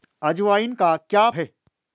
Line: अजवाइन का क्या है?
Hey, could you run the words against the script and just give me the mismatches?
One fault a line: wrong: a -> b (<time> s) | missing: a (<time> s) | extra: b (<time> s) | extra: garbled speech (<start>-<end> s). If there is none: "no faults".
no faults